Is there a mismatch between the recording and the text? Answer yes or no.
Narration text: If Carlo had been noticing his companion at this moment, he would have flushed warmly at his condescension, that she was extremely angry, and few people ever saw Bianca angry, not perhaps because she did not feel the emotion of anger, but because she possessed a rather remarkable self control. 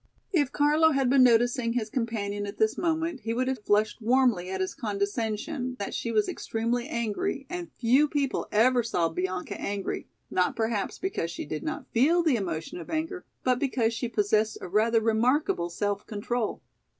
no